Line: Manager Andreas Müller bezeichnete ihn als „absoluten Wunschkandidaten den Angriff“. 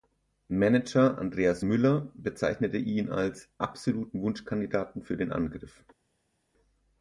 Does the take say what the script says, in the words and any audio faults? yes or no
no